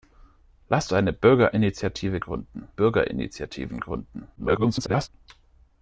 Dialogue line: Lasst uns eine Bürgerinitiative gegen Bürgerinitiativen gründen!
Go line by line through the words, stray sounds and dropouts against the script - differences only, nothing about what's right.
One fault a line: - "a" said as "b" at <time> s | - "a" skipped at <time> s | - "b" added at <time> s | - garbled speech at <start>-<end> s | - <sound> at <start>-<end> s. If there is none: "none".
- "uns" skipped at 0.9 s
- "gegen" said as "gründen" at 2.2 s
- garbled speech at 4.4-5.1 s